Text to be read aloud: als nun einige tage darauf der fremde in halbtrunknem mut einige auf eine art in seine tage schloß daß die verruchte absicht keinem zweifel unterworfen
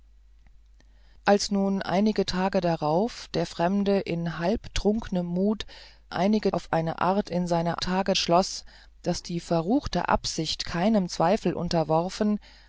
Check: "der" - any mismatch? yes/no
no